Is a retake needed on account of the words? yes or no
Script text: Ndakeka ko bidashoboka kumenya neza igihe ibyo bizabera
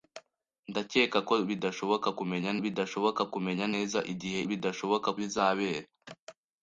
yes